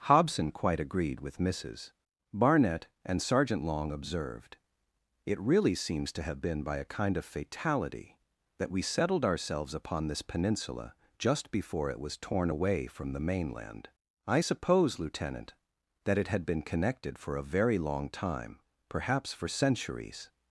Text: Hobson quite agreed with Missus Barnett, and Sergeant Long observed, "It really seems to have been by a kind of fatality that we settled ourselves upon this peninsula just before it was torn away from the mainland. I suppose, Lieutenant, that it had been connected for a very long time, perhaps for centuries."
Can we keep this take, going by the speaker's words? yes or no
yes